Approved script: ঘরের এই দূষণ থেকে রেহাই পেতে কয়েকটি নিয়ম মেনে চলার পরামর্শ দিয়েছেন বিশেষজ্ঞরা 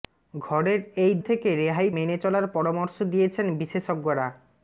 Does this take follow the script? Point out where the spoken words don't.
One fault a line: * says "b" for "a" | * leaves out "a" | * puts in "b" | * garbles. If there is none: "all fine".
* leaves out "দূষণ"
* leaves out "পেতে কয়েকটি নিয়ম"